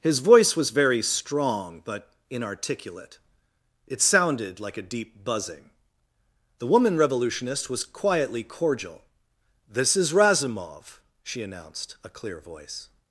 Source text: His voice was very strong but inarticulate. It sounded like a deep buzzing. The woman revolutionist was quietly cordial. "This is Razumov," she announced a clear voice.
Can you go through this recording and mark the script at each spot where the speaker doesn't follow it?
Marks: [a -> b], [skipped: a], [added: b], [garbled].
His voice was very strong but inarticulate. It sounded like a deep buzzing. The woman revolutionist was quietly cordial. "This is Razumov," she announced a clear voice.